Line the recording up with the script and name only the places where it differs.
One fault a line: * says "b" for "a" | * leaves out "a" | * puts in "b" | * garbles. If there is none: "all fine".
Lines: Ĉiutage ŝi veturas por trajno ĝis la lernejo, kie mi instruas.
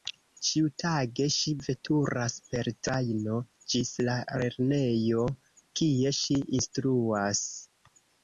* says "per" for "por"
* says "ŝi" for "mi"